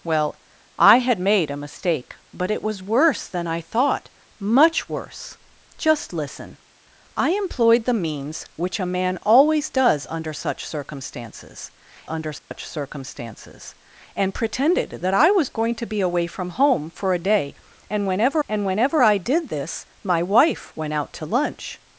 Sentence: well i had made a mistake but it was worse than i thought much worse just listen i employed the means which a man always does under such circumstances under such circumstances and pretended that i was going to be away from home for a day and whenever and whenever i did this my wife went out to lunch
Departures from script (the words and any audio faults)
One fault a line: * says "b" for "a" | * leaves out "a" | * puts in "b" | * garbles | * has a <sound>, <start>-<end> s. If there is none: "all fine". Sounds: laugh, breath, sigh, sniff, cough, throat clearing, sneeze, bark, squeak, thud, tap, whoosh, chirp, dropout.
* has a dropout, 12.4-12.5 s